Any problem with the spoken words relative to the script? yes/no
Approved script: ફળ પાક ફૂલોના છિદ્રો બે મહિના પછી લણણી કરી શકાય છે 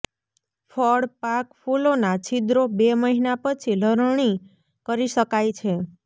no